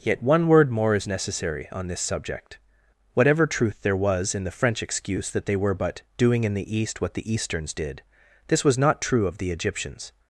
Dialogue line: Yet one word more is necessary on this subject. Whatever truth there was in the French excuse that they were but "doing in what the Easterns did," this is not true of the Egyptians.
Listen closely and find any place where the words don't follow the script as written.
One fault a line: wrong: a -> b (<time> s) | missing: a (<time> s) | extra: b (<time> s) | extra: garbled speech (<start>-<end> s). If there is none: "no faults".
extra: the East (6.5 s)
wrong: is -> was (8.7 s)